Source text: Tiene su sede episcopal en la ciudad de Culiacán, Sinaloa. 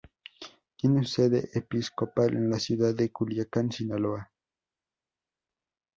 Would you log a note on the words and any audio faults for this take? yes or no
yes